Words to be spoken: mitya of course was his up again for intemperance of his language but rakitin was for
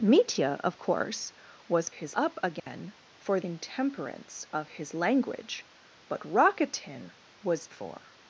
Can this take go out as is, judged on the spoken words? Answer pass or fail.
pass